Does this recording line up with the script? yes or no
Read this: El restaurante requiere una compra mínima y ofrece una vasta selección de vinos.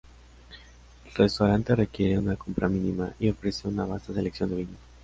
yes